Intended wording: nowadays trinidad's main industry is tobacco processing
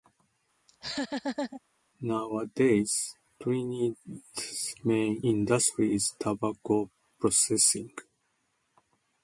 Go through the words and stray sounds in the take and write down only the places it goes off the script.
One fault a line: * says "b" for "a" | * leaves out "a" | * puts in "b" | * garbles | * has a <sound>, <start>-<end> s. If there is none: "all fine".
* has a laugh, 0.7-1.6 s